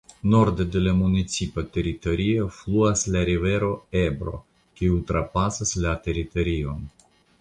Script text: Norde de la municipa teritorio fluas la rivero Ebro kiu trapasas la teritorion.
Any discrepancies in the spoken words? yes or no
no